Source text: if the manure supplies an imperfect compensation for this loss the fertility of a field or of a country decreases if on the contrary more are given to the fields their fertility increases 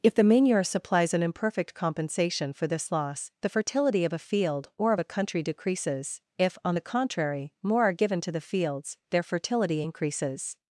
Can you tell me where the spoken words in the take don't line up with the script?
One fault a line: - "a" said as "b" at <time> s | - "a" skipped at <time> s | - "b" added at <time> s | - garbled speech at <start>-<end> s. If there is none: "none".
none